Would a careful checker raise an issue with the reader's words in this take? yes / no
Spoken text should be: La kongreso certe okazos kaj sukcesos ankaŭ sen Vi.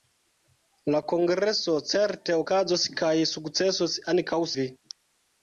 yes